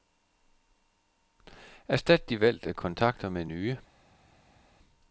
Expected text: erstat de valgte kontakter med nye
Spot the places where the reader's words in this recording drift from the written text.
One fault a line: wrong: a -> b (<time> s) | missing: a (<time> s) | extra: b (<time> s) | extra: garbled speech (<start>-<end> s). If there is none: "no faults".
no faults